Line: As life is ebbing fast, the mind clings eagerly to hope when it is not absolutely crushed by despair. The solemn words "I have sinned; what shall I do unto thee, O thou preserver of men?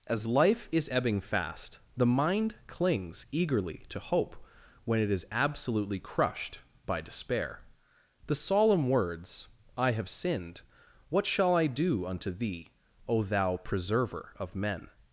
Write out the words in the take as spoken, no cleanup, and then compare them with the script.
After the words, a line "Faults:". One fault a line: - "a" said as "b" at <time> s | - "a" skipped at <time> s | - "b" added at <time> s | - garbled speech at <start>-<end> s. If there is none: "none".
As life is ebbing fast, the mind clings eagerly to hope when it is absolutely crushed by despair. The solemn words "I have sinned; what shall I do unto thee, O thou preserver of men?
Faults:
- "not" skipped at 5.3 s